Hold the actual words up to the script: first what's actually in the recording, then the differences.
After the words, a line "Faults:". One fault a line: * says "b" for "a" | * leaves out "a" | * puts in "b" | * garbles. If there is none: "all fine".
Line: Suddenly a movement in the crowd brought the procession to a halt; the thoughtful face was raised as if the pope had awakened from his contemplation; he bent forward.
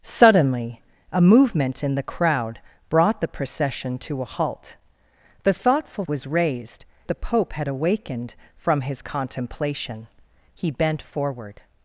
Suddenly a movement in the crowd brought the procession to a halt; the thoughtful was raised the pope had awakened from his contemplation; he bent forward.
Faults:
* leaves out "face"
* leaves out "as if"